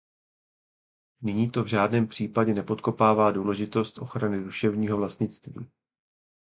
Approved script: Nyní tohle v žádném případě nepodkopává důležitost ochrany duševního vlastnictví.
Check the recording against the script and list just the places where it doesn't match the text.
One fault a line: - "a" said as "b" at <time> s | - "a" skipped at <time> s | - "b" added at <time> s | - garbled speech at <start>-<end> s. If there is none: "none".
- "tohle" said as "to" at 1.5 s